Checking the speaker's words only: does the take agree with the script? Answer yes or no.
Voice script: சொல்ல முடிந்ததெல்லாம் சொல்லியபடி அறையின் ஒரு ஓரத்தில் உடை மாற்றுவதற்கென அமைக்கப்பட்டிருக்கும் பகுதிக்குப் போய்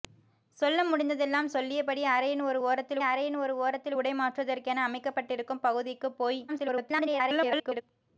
no